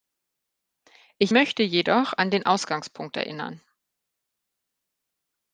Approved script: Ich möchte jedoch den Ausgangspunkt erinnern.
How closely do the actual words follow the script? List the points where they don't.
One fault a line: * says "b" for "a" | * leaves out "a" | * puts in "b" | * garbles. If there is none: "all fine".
* puts in "an"